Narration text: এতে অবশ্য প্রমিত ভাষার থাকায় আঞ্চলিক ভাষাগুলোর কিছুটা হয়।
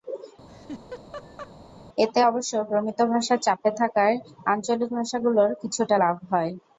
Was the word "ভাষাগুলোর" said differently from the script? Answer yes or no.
no